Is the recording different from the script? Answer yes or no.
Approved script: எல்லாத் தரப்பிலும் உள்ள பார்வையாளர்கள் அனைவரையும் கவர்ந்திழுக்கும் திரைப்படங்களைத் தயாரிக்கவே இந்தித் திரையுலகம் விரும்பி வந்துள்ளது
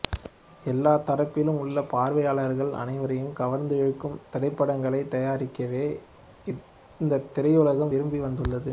no